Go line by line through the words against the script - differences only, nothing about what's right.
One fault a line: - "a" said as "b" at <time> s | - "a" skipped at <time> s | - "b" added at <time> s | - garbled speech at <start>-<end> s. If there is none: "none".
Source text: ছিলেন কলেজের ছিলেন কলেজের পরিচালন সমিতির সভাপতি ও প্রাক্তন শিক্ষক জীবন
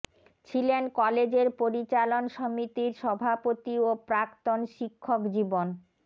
- "ছিলেন কলেজের" skipped at 1.5 s